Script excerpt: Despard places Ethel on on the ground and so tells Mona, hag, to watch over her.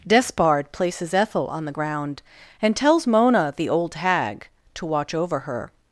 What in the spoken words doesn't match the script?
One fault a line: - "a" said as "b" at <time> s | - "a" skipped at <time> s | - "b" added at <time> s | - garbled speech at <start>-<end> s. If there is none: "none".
- "on" skipped at 1.6 s
- "so" skipped at 2.8 s
- "the old" added at 3.6 s